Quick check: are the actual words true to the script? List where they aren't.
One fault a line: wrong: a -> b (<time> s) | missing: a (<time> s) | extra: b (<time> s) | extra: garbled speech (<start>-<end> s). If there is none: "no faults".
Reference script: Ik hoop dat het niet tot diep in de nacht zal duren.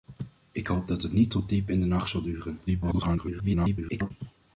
extra: garbled speech (2.7-4.1 s)